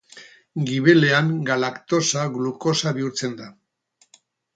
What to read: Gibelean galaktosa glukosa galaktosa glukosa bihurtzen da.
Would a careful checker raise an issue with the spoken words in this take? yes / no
yes